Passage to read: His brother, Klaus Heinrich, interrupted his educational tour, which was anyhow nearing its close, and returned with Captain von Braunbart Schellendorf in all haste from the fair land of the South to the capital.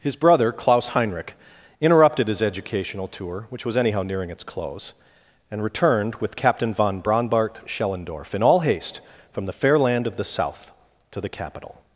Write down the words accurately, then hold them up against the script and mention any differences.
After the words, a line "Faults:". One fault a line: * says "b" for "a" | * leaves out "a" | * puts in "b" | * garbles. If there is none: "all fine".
His brother, Klaus Heinrich, interrupted his educational tour, which was anyhow nearing its close, and returned with Captain von Braunbart Schellendorf in all haste from the fair land of the South to the capital.
Faults:
all fine